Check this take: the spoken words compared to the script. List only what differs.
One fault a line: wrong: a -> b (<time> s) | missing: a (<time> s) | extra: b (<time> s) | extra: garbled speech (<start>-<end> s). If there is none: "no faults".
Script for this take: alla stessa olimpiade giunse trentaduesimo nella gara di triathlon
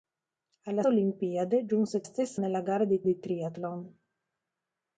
missing: stessa (0.8 s)
wrong: trentaduesimo -> stessa (2.0 s)
extra: di (3.0 s)